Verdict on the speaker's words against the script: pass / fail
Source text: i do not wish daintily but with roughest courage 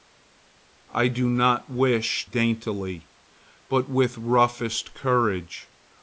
pass